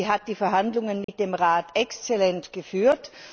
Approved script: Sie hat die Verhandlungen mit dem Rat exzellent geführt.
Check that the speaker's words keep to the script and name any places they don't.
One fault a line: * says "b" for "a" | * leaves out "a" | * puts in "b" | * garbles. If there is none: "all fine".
all fine